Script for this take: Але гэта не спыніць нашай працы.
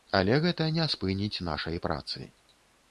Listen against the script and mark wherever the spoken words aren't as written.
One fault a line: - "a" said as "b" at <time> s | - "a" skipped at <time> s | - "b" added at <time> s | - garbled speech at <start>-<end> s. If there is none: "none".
none